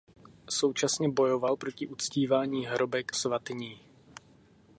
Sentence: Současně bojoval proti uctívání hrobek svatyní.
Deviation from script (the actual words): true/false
false